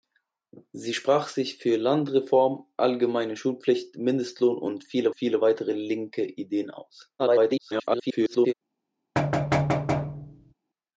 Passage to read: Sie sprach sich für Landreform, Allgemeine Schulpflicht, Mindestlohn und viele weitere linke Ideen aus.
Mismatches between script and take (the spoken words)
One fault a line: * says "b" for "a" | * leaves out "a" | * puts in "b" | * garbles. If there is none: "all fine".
* puts in "viele"
* garbles